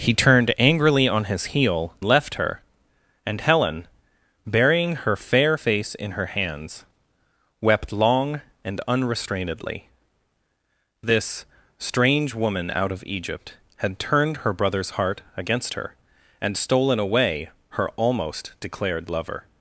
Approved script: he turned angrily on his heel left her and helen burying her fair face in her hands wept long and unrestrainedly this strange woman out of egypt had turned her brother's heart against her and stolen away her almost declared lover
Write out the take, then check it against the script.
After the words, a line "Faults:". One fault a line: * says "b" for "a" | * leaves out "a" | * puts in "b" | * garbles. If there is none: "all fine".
he turned angrily on his heel left her and helen burying her fair face in her hands wept long and unrestrainedly this strange woman out of egypt had turned her brother's heart against her and stolen away her almost declared lover
Faults:
all fine